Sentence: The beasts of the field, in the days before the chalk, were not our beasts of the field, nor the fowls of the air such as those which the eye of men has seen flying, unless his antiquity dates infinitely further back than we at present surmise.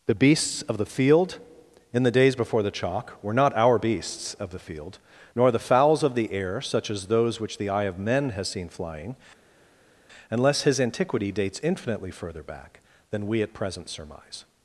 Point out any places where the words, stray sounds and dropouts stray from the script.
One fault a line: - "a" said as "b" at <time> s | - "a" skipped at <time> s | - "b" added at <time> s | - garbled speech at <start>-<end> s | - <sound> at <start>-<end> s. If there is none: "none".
none